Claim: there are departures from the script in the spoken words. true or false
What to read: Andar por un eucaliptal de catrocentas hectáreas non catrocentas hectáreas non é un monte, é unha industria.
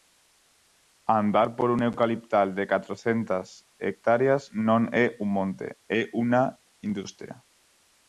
true